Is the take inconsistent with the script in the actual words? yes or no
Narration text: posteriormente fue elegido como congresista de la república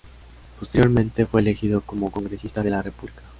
no